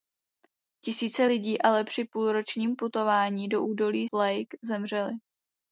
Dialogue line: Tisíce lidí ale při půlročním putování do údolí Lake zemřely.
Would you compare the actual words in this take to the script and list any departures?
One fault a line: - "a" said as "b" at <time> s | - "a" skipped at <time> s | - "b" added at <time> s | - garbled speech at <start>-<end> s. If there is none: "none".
none